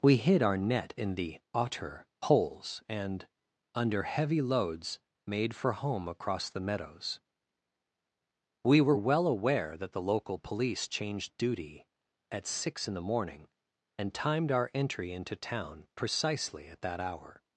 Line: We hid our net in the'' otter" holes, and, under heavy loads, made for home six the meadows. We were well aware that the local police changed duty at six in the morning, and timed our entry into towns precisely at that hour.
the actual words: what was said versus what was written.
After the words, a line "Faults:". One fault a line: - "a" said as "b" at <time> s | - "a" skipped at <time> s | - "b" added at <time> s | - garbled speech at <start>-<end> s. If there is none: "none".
We hid our net in the'' otter" holes, and, under heavy loads, made for home across the meadows. We were well aware that the local police changed duty at six in the morning, and timed our entry into town precisely at that hour.
Faults:
- "six" said as "across" at 6.1 s
- "towns" said as "town" at 15.3 s